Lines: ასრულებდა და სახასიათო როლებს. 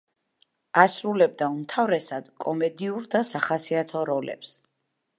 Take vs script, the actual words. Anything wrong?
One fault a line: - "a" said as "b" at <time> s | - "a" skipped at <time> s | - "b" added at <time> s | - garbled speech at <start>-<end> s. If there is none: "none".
- "უმთავრესად კომედიურ" added at 1.6 s